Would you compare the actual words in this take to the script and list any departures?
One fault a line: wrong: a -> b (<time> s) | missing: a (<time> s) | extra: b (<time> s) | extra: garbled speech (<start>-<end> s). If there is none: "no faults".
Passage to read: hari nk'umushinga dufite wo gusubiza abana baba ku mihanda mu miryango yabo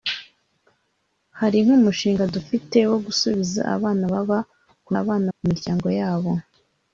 wrong: mihanda -> abana (5.0 s)